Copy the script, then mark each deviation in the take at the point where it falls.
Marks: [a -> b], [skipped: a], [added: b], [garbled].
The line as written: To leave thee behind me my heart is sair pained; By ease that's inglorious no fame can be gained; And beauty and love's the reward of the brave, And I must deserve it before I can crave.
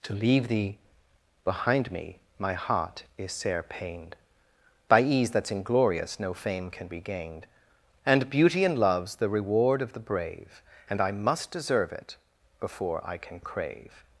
To leave thee behind me my heart is sair pained; By ease that's inglorious no fame can be gained; And beauty and love's the reward of the brave, And I must deserve it before I can crave.